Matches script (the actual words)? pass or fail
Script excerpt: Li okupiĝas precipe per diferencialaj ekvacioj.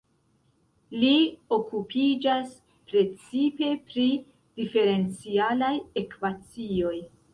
fail